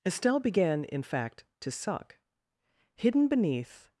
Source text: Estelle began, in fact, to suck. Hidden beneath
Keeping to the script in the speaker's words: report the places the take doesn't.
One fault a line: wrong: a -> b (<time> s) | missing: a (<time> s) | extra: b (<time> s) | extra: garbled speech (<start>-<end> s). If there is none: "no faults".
no faults